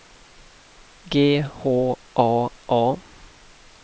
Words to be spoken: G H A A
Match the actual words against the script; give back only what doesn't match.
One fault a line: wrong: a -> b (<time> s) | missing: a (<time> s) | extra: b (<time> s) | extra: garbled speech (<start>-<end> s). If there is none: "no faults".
no faults